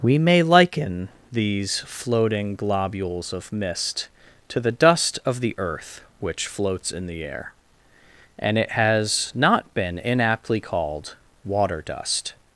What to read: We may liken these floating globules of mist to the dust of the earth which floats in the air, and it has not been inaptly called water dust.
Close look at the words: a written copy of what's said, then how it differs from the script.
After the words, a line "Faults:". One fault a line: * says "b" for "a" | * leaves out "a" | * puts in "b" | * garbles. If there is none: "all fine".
We may liken these floating globules of mist to the dust of the earth which floats in the air, and it has not been inaptly called water dust.
Faults:
all fine